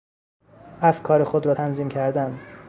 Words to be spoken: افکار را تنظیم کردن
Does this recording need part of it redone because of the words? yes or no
yes